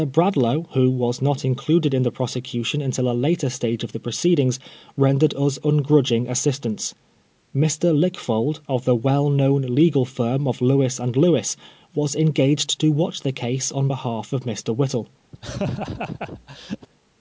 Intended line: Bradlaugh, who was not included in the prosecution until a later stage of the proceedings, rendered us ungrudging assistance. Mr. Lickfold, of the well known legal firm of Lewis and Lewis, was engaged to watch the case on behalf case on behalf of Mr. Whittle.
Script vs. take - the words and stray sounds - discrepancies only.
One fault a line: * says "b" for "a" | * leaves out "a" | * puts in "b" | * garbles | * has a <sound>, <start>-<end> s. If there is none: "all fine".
* leaves out "case on behalf"
* has a laugh, 15.3-16.9 s